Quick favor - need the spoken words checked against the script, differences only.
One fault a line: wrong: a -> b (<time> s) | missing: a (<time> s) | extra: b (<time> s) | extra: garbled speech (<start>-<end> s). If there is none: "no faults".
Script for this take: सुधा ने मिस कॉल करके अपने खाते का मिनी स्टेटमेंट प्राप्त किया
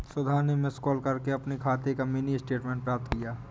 no faults